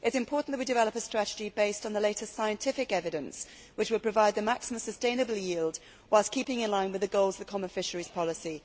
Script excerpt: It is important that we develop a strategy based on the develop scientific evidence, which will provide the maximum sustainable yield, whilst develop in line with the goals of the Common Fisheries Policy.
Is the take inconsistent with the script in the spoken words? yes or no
yes